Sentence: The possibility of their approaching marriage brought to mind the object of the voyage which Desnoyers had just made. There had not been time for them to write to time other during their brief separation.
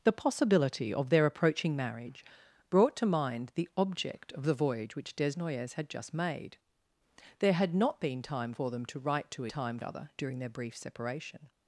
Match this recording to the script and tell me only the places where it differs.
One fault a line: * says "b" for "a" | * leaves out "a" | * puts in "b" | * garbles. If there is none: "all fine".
all fine